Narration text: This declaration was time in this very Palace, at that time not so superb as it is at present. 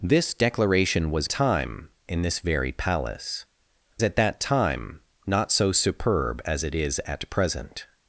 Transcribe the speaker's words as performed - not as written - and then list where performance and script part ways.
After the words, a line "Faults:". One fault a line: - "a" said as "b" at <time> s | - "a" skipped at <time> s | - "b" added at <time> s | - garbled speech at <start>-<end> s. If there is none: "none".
This declaration was time in this very Palace, at that time not so superb as it is at present.
Faults:
none